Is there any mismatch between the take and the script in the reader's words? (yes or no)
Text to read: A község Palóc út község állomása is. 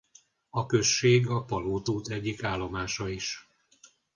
yes